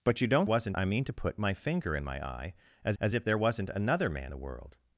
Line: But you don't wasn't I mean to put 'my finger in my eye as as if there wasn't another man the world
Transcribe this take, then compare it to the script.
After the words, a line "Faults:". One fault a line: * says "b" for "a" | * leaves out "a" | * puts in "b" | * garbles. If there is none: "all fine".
But you don't wasn't I mean to put 'my finger in my eye as as if there wasn't another man the world
Faults:
all fine